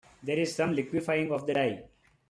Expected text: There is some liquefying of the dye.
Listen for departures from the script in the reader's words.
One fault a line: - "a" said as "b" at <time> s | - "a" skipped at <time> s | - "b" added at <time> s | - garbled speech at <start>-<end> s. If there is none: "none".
none